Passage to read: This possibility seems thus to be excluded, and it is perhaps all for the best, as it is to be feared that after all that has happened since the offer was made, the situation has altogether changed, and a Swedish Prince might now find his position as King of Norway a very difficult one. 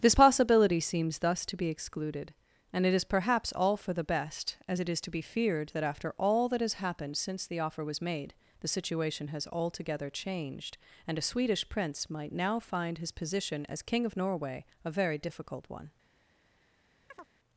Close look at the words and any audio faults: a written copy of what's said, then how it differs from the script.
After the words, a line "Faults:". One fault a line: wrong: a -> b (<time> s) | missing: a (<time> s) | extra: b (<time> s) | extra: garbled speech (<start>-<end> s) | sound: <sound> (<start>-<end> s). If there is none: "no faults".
This possibility seems thus to be excluded, and it is perhaps all for the best, as it is to be feared that after all that has happened since the offer was made, the situation has altogether changed, and a Swedish Prince might now find his position as King of Norway a very difficult one.
Faults:
sound: chirp (17.1-17.3 s)